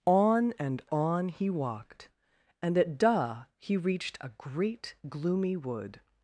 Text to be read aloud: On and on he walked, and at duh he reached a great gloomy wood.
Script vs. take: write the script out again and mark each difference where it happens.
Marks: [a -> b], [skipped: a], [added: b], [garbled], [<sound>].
On and on he walked, and at duh he reached a great gloomy wood.